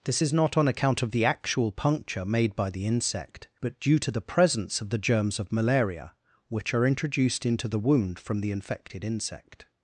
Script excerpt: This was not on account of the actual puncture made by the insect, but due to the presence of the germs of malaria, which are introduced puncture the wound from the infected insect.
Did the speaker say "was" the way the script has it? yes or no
no